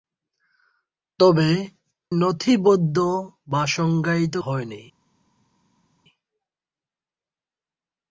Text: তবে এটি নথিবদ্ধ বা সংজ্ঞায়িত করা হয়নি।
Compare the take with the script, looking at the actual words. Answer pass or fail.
fail